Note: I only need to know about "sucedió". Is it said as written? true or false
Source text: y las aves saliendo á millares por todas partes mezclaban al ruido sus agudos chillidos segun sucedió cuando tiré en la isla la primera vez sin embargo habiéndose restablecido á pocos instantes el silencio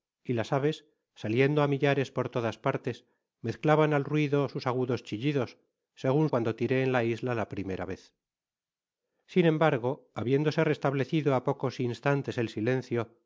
false